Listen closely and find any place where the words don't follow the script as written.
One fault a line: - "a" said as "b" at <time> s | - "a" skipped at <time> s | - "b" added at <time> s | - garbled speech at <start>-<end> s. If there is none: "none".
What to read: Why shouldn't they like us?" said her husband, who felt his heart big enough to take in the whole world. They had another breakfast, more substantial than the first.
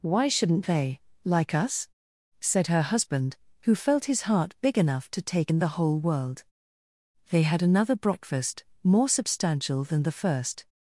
none